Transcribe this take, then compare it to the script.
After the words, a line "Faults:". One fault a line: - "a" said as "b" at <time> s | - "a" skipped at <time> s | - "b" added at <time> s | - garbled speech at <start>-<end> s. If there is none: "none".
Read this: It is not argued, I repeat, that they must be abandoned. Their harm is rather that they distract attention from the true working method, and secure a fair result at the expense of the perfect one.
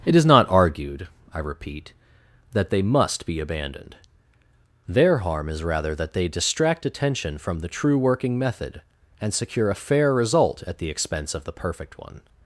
It is not argued, I repeat, that they must be abandoned. Their harm is rather that they distract attention from the true working method, and secure a fair result at the expense of the perfect one.
Faults:
none